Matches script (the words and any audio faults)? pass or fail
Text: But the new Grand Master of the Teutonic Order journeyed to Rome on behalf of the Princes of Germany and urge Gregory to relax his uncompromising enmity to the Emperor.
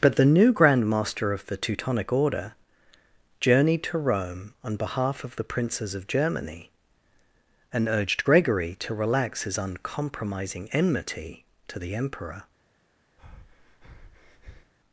fail